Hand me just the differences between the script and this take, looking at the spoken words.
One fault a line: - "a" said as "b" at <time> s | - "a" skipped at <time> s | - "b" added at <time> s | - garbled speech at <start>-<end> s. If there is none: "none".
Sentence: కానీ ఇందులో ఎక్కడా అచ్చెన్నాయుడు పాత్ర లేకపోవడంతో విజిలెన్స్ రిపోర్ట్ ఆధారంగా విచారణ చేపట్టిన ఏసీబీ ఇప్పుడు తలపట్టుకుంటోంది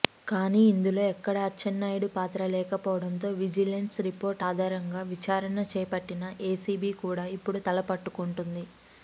- "కూడా" added at 7.0 s